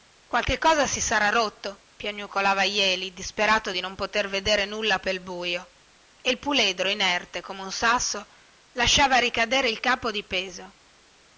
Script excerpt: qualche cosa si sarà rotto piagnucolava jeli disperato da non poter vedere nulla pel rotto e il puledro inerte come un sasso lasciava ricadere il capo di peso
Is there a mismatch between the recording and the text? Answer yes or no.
yes